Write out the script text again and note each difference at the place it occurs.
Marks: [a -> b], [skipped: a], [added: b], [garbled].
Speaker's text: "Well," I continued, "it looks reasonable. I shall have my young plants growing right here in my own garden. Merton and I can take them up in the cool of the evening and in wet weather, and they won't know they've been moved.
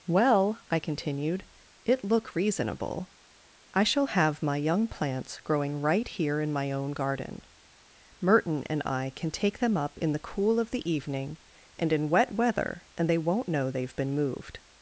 "Well," I continued, "it [looks -> look] reasonable. I shall have my young plants growing right here in my own garden. Merton and I can take them up in the cool of the evening and in wet weather, and they won't know they've been moved.